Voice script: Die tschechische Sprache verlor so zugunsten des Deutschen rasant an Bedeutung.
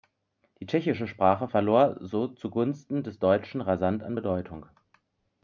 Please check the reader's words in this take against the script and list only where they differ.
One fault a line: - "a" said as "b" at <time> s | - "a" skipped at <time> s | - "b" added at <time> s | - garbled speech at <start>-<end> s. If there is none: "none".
none